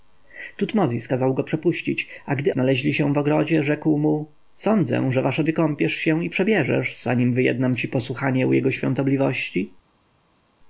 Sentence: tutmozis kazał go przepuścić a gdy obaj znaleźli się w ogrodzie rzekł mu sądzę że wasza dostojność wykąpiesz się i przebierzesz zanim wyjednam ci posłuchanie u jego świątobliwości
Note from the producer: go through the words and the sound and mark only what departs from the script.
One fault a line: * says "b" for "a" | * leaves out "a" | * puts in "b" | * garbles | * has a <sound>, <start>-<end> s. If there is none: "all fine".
* leaves out "obaj"
* leaves out "dostojność"